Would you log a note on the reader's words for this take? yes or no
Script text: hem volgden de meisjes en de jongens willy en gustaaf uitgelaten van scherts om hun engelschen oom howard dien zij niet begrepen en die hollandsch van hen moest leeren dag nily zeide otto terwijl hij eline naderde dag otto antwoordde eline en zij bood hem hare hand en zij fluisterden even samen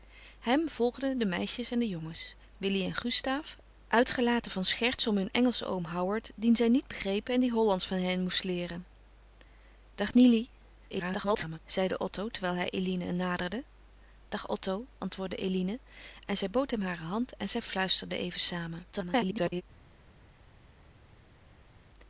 yes